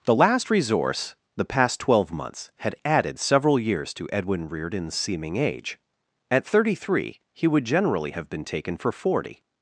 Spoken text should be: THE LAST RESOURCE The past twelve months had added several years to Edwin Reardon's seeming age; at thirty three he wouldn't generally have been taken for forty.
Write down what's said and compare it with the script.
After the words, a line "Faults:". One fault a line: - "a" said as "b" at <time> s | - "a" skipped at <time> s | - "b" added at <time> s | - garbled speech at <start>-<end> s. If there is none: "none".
THE LAST RESOURCE The past twelve months had added several years to Edwin Reardon's seeming age; at thirty three he would generally have been taken for forty.
Faults:
- "wouldn't" said as "would" at 7.5 s